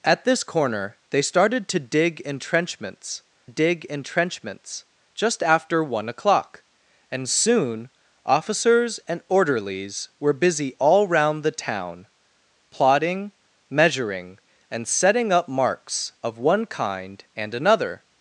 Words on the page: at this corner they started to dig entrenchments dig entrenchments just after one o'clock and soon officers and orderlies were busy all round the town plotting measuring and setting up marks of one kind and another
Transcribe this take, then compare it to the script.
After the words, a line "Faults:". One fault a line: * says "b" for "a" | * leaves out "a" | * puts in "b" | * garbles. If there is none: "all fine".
at this corner they started to dig entrenchments dig entrenchments just after one o'clock and soon officers and orderlies were busy all round the town plotting measuring and setting up marks of one kind and another
Faults:
all fine